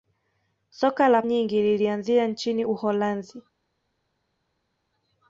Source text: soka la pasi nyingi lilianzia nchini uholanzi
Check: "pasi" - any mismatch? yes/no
yes